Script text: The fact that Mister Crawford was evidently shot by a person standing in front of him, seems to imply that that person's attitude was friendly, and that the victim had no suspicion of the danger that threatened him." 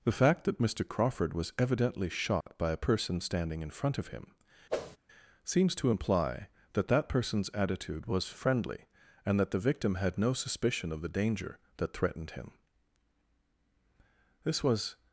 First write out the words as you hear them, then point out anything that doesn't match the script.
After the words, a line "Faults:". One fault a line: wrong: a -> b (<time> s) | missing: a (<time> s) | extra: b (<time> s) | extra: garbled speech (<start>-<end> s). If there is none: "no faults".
The fact that Mister Crawford was evidently shot by a person standing in front of him, seems to imply that that person's attitude was friendly, and that the victim had no suspicion of the danger that threatened him." This was
Faults:
extra: This was (14.4 s)